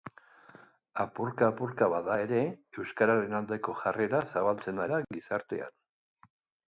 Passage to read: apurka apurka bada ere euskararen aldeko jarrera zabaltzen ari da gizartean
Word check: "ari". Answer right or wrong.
wrong